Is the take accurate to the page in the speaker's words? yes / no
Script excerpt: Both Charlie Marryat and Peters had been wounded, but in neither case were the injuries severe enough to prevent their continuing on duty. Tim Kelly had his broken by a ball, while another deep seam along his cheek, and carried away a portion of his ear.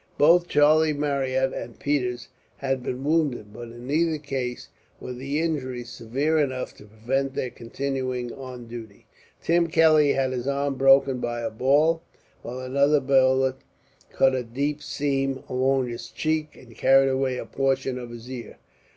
no